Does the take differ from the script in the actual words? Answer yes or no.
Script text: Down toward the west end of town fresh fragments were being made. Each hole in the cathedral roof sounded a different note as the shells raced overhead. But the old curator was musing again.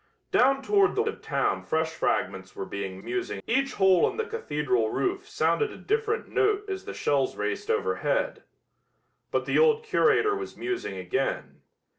yes